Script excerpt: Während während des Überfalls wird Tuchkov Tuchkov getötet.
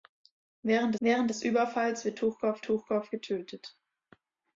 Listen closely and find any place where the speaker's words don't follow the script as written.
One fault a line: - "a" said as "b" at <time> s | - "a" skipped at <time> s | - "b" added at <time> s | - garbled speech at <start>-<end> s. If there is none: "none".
none